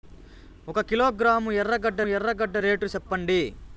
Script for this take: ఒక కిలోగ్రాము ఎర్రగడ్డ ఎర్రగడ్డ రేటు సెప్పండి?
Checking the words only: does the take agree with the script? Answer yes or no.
yes